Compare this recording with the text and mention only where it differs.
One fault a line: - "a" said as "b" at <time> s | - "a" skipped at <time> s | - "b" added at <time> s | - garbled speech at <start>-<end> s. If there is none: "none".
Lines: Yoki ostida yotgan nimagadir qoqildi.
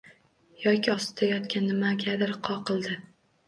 none